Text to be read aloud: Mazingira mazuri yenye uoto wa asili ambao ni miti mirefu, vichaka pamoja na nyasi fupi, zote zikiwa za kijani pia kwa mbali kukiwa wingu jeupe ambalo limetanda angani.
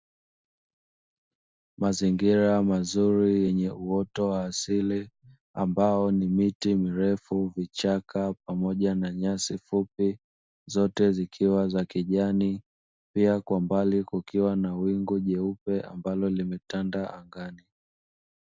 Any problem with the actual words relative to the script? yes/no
yes